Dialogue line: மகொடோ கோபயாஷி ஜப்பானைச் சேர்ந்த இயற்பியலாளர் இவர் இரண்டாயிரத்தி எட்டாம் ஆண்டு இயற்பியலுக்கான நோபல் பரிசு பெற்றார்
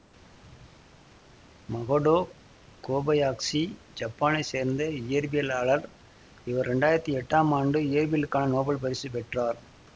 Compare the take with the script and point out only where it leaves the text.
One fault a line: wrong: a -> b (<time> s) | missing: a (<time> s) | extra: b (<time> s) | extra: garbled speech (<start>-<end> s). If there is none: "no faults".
no faults